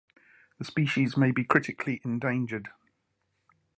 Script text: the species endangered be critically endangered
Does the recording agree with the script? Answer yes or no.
no